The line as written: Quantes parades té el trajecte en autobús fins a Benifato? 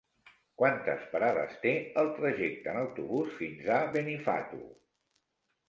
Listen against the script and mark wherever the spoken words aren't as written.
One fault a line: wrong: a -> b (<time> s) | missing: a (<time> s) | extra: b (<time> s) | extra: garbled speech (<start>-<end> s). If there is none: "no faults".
no faults